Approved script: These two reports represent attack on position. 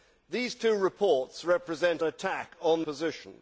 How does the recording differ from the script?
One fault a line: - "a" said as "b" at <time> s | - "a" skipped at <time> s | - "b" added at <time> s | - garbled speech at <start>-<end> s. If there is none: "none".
none